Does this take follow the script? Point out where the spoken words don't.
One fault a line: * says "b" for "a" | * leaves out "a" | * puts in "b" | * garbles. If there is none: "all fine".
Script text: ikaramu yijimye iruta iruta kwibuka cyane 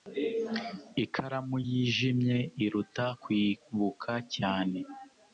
* leaves out "iruta"